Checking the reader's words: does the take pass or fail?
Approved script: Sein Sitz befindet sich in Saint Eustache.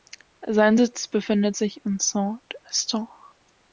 pass